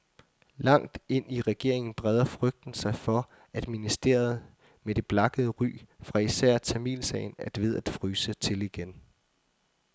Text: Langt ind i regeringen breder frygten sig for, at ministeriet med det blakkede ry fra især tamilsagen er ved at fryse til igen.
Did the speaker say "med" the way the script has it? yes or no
yes